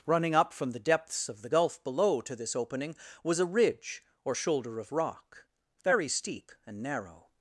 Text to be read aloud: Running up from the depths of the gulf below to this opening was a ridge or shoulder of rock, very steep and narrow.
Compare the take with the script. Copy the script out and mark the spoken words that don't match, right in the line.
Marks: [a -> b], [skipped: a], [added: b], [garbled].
Running up from the depths of the gulf below to this opening was a ridge or shoulder of rock, very steep and narrow.